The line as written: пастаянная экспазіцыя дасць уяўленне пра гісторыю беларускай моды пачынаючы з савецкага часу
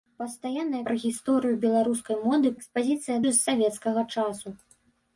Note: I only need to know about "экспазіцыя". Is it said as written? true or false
false